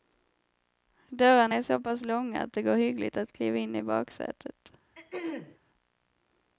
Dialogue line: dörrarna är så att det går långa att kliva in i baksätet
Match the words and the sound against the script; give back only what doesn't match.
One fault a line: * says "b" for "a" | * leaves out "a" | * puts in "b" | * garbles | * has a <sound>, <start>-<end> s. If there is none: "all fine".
* puts in "pass långa"
* says "hyggligt" for "långa"
* has a throat clearing, 4.9-5.6 s